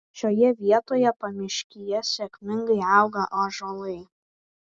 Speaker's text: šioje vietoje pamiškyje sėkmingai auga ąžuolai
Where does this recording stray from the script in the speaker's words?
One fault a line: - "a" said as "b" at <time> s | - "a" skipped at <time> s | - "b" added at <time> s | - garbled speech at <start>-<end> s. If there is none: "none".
none